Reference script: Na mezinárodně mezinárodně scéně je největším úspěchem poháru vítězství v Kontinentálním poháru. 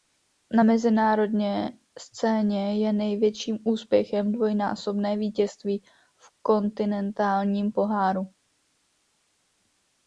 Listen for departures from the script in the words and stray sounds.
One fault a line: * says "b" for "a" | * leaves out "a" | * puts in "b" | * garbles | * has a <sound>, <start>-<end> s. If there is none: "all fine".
* leaves out "mezinárodně"
* says "dvojnásobné" for "poháru"